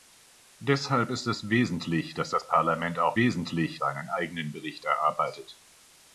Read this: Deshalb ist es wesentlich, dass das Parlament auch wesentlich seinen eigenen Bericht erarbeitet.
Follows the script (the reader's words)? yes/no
yes